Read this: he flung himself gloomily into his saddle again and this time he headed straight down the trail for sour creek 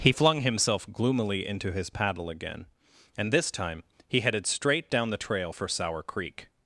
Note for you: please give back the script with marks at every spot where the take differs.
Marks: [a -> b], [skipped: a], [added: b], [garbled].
he flung himself gloomily into his [saddle -> paddle] again and this time he headed straight down the trail for sour creek